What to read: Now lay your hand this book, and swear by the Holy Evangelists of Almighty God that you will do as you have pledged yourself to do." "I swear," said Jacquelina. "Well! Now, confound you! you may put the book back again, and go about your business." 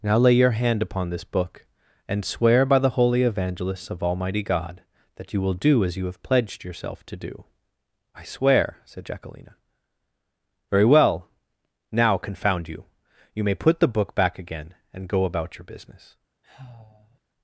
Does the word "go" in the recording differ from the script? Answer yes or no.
no